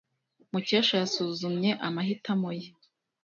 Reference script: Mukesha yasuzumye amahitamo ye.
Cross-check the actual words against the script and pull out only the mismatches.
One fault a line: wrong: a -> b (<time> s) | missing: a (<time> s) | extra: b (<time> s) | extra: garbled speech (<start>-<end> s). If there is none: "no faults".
no faults